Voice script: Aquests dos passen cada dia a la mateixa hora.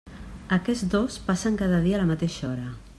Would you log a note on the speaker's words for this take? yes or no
no